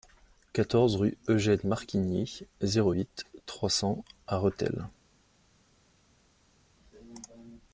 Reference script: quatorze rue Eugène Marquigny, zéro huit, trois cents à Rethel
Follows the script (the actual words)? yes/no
yes